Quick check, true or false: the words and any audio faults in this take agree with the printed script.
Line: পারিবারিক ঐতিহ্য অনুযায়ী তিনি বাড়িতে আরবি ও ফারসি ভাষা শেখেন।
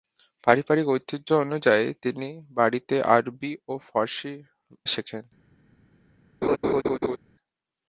false